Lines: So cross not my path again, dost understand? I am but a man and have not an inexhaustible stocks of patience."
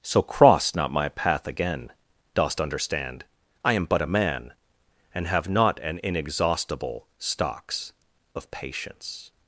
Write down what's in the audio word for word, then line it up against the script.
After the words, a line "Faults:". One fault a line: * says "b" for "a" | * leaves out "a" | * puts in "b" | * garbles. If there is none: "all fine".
So cross not my path again, dost understand? I am but a man and have not an inexhaustible stocks of patience."
Faults:
all fine